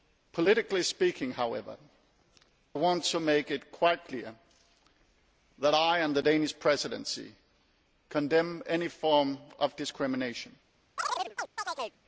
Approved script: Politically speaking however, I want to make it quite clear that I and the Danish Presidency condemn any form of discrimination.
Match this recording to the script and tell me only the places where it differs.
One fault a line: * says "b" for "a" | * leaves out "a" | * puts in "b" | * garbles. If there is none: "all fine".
* leaves out "I"